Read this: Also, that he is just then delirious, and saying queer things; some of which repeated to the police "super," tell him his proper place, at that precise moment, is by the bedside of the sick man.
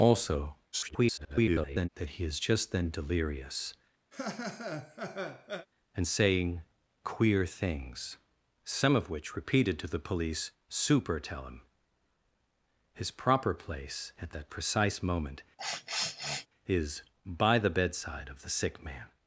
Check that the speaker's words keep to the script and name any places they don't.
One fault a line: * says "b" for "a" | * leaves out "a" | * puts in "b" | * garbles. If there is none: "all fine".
* garbles